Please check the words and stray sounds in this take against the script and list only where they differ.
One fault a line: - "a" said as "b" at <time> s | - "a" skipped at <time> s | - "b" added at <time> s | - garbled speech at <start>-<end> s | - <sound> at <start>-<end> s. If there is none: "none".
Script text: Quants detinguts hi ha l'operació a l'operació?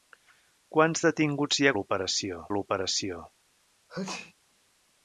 - sneeze at 3.9-4.3 s